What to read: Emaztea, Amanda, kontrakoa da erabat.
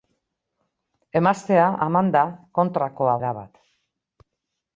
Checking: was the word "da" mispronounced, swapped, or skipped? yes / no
yes